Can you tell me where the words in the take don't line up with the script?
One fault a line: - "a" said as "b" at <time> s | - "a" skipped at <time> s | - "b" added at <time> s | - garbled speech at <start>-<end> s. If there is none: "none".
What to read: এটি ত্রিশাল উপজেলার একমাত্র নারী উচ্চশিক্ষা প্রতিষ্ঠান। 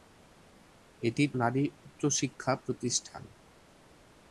- "ত্রিশাল উপজেলার একমাত্র" skipped at 1.2 s